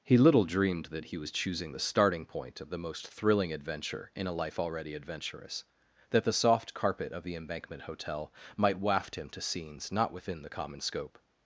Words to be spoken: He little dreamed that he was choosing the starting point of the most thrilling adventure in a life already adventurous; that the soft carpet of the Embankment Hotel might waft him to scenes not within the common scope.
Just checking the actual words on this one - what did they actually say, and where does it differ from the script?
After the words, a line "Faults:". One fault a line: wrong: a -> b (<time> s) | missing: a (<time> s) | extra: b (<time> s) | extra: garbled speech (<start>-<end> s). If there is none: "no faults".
He little dreamed that he was choosing the starting point of the most thrilling adventure in a life already adventurous; that the soft carpet of the Embankment Hotel might waft him to scenes not within the common scope.
Faults:
no faults